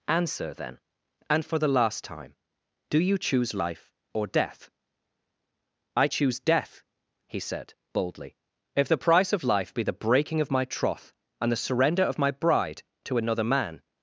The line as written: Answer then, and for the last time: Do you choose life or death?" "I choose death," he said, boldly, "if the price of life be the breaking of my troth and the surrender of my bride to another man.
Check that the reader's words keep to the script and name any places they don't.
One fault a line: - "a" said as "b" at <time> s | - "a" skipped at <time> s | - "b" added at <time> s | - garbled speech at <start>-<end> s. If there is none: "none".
none